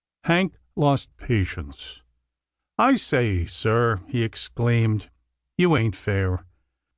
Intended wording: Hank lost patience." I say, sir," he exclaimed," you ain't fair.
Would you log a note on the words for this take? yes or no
no